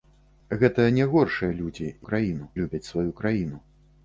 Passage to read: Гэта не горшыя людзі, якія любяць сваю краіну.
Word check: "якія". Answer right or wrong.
wrong